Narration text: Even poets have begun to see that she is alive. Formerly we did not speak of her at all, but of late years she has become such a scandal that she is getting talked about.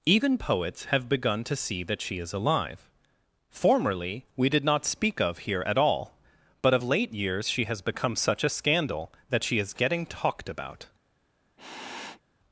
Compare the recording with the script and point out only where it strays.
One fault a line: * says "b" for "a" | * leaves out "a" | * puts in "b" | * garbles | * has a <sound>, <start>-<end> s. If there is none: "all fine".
* says "here" for "her"
* has a sniff, 11.6-12.2 s